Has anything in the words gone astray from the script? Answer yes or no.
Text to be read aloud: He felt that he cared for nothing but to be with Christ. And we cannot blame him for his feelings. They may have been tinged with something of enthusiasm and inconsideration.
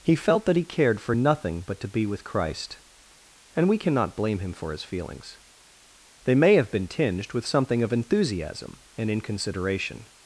no